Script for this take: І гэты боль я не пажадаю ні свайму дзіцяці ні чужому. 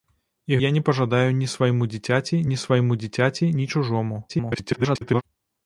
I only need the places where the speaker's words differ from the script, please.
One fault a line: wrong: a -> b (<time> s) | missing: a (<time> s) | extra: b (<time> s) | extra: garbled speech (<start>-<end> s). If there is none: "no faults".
missing: гэты боль (0.6 s)
extra: свайму дзіцяці ні (2.6 s)
extra: garbled speech (4.3-5.2 s)